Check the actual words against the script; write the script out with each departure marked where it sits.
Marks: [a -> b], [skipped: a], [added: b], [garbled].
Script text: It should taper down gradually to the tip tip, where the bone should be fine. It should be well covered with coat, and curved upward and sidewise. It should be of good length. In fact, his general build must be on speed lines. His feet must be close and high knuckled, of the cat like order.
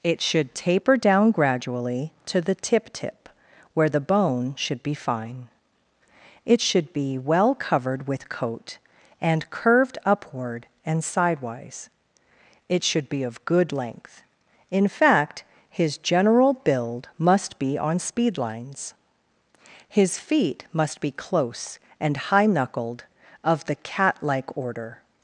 It should taper down gradually to the tip tip, where the bone should be fine. It should be well covered with coat, and curved upward and sidewise. It should be of good length. In fact, his general build must be on speed lines. His feet must be close and high knuckled, of the cat like order.